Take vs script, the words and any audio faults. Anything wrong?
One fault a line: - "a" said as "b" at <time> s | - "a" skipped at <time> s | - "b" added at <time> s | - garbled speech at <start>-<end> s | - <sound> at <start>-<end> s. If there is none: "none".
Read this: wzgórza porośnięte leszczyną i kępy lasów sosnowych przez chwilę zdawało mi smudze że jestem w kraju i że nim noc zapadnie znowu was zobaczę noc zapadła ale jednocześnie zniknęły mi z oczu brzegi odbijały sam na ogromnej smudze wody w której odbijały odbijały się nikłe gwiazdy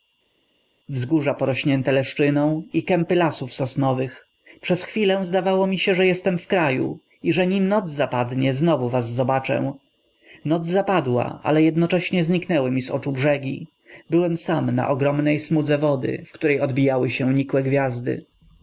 - "smudze" said as "się" at 5.8 s
- "odbijały" said as "byłem" at 14.1 s
- "odbijały" skipped at 17.1 s